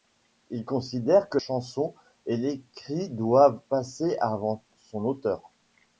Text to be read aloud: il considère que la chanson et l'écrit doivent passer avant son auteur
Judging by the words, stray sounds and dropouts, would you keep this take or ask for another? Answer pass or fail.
fail